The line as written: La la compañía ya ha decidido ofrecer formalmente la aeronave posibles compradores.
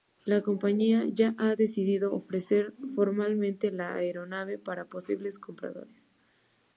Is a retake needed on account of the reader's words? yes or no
yes